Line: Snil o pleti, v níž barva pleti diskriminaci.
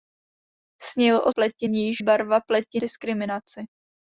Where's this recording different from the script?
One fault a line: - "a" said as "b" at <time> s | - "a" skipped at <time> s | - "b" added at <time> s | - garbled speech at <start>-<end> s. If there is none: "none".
none